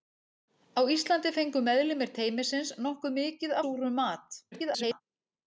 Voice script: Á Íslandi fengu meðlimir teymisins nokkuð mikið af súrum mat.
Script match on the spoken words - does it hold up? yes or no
no